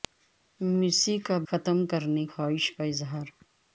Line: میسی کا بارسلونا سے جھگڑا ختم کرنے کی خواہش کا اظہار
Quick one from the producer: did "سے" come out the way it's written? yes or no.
no